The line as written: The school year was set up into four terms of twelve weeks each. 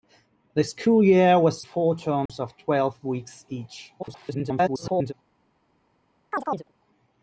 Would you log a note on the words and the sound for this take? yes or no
yes